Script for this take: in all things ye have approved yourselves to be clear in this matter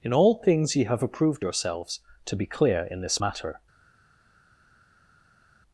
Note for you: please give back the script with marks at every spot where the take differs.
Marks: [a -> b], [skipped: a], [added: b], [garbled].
in all things ye have approved yourselves to be clear in this matter